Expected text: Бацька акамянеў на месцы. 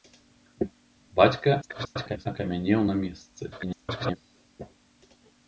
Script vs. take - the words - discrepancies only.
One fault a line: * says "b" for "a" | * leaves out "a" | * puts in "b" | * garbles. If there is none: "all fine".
* garbles
* garbles